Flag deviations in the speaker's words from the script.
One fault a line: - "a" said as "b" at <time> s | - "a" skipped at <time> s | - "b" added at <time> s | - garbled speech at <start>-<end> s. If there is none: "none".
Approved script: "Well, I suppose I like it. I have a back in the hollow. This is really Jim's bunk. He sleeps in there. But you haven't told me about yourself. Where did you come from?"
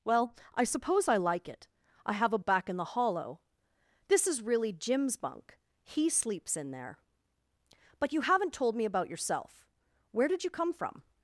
none